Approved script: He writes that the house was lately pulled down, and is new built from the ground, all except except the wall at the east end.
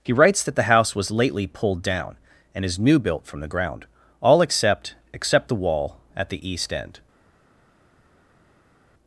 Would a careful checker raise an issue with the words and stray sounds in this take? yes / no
no